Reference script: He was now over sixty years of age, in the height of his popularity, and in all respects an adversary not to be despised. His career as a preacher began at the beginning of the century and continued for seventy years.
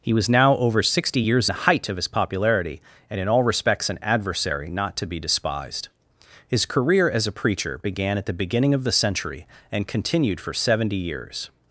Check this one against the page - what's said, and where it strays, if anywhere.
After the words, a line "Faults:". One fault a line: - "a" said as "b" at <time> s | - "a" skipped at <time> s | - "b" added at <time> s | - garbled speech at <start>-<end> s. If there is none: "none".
He was now over sixty years the height of his popularity, and in all respects an adversary not to be despised. His career as a preacher began at the beginning of the century and continued for seventy years.
Faults:
- "of age in" skipped at 1.5 s